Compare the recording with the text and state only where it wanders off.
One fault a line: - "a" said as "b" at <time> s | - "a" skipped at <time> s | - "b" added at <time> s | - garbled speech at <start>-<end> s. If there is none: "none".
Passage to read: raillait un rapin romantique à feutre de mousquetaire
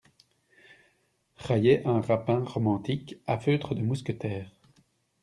none